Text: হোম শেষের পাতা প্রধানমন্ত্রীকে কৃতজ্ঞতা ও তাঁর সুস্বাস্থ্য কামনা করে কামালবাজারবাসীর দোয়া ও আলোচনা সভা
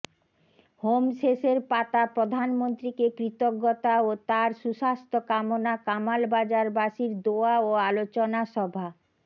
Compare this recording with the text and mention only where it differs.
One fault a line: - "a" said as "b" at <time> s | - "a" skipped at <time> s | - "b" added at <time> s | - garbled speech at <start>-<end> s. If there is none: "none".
- "করে" skipped at 5.8 s